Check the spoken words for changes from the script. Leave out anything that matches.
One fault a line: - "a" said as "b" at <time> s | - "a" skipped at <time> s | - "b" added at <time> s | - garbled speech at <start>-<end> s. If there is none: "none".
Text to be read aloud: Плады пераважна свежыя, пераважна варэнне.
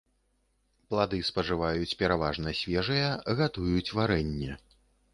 - "спажываюць" added at 1.3 s
- "пераважна" said as "гатуюць" at 3.4 s